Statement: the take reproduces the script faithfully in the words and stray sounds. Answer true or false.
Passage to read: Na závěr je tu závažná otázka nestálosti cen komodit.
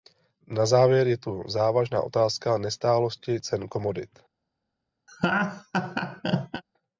false